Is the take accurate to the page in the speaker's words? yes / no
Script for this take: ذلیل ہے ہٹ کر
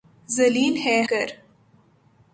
no